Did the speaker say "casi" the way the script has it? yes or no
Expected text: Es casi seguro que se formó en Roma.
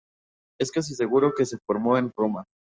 yes